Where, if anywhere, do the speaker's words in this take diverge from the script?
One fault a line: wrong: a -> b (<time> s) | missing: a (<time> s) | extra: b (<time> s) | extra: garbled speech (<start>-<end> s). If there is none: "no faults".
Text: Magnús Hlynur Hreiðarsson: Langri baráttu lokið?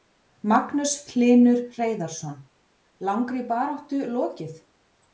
no faults